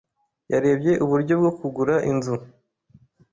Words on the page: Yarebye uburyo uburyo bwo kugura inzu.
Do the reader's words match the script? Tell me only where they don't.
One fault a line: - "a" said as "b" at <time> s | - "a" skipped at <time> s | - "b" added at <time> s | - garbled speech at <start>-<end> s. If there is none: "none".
- "uburyo" skipped at 1.3 s